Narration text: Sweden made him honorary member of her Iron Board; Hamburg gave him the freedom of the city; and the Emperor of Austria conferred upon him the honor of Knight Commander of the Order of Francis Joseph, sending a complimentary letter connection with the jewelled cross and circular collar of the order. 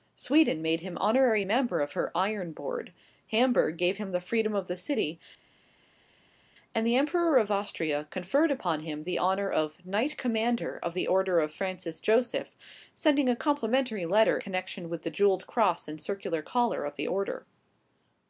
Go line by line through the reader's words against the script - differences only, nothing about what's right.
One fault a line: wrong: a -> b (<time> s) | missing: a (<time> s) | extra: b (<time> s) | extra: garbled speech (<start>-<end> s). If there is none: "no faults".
no faults